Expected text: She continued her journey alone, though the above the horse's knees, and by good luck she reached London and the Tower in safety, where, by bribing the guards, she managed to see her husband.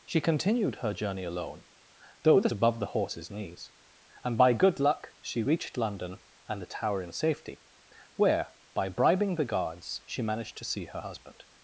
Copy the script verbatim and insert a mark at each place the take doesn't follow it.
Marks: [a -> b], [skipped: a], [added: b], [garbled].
She continued her journey alone, though the above the horse's knees, and by good luck she reached London and the Tower in safety, where, by bribing the guards, she managed to see her husband.